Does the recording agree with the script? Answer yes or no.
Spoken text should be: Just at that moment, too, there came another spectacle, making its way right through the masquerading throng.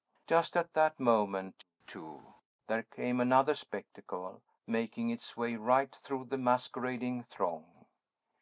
yes